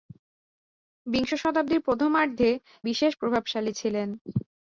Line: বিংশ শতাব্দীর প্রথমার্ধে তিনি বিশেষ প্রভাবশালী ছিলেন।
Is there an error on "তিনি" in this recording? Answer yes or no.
yes